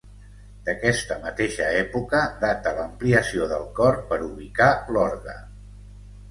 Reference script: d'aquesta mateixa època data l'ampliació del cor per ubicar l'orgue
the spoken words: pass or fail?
pass